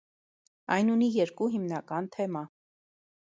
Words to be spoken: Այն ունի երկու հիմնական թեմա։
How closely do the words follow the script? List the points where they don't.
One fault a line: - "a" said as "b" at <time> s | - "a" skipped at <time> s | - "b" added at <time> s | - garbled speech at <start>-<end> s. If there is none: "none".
none